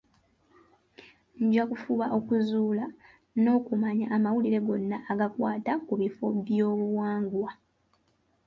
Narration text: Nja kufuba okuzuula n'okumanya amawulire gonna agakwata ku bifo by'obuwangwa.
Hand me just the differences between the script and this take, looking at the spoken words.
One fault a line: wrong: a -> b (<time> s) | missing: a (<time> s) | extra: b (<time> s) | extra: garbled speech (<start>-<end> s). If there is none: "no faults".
no faults